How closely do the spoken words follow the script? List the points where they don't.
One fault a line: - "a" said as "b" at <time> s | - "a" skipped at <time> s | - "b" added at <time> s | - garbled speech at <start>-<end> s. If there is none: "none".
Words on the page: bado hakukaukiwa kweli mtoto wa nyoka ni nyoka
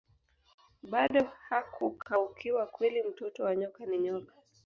none